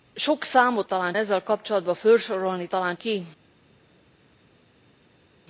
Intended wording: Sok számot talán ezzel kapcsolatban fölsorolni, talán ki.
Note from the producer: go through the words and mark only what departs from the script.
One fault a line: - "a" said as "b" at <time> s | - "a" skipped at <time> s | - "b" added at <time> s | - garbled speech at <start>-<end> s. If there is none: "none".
none